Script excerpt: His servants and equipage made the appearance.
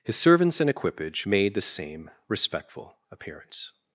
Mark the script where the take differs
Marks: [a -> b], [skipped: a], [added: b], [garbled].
His servants and equipage made the [added: same respectful] appearance.